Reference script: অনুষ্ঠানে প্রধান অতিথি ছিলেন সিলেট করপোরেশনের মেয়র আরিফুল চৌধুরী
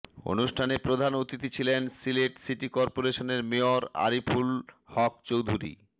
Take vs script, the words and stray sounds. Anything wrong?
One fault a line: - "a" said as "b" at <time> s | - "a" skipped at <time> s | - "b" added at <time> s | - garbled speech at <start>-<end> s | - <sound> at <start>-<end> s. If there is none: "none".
- "সিটি" added at 2.4 s
- "হক" added at 4.9 s